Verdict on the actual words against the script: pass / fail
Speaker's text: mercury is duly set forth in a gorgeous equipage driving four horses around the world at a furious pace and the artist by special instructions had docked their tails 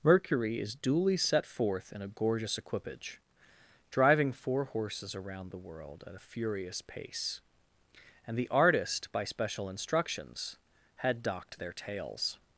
pass